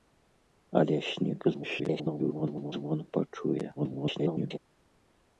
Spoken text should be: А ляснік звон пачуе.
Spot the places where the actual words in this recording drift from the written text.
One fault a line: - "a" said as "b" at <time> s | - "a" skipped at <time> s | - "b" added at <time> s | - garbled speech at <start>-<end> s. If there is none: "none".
- garbled speech at 1.5-2.7 s
- garbled speech at 3.8-4.6 s